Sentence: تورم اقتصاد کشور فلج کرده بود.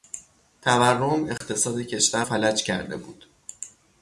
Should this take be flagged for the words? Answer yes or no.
no